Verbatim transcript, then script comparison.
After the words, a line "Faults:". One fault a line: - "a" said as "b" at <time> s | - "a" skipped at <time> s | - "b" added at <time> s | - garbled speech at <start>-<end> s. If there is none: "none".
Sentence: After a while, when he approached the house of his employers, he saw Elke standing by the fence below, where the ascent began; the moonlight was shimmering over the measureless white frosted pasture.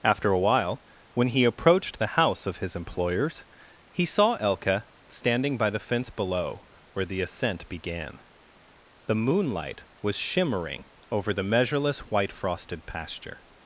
After a while, when he approached the house of his employers, he saw Elke standing by the fence below, where the ascent began; the moonlight was shimmering over the measureless white frosted pasture.
Faults:
none